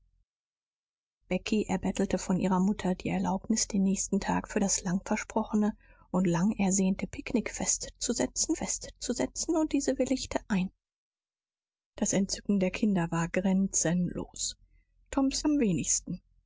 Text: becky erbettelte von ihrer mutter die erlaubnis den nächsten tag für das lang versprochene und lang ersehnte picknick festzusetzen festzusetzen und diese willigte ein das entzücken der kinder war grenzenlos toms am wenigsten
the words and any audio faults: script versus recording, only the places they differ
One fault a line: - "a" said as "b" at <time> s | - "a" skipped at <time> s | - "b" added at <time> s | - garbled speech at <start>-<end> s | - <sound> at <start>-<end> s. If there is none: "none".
none